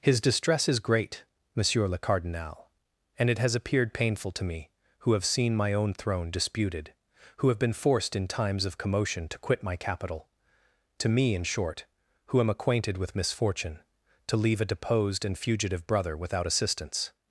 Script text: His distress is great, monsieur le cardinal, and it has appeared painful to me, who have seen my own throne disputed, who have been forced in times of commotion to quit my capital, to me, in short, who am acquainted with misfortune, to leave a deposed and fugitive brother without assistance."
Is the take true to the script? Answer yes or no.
yes